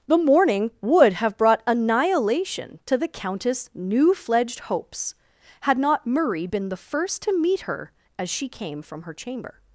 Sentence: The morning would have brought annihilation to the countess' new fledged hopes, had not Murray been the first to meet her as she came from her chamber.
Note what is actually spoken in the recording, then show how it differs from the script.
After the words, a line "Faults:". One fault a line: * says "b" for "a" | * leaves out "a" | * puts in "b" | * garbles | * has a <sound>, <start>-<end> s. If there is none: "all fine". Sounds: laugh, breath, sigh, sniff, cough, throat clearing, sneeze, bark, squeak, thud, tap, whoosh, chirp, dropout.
The morning would have brought annihilation to the countess' new fledged hopes, had not Murray been the first to meet her as she came from her chamber.
Faults:
all fine